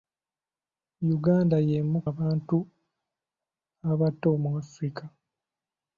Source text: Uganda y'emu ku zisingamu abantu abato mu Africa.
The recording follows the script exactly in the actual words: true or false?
false